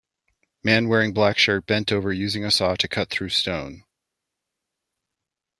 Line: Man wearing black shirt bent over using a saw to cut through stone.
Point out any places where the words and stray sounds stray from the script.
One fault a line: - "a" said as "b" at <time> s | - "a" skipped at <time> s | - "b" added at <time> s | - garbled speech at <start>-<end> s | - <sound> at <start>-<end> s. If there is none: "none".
none